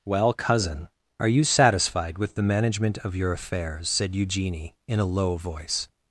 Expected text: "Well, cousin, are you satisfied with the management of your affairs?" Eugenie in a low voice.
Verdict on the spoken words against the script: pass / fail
fail